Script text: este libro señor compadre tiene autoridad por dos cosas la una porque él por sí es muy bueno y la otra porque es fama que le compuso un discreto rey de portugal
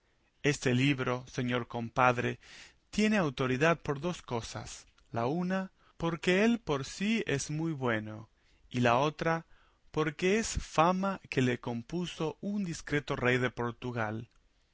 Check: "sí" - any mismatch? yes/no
no